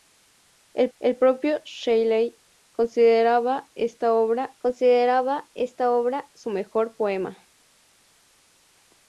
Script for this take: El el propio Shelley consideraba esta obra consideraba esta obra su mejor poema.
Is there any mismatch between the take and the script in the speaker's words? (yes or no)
no